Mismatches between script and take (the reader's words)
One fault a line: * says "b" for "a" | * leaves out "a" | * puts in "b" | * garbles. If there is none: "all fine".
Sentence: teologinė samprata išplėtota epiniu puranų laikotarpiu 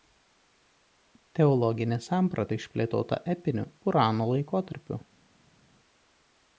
all fine